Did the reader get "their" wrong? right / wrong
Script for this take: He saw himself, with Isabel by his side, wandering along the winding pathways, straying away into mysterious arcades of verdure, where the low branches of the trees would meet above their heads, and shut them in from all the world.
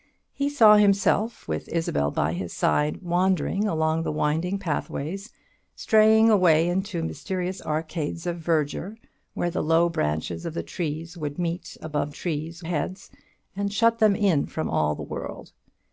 wrong